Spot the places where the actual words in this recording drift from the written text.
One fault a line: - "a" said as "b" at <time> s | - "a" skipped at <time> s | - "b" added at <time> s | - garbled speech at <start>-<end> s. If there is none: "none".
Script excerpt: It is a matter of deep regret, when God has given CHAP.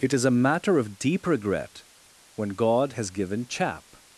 none